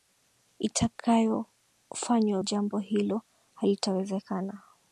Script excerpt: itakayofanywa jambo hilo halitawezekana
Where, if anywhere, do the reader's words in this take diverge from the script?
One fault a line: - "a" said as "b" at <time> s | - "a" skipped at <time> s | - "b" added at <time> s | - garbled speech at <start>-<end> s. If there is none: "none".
none